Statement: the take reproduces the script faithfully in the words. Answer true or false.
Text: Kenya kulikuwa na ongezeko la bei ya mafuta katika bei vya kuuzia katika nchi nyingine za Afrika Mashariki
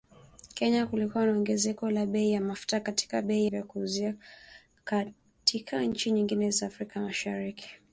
true